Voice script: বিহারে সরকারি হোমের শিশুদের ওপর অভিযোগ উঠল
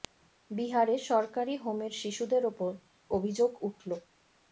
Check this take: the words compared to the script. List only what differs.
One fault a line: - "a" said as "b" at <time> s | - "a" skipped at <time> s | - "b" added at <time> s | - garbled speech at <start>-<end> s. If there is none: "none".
none